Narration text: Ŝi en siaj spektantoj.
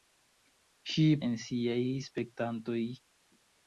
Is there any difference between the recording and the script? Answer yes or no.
no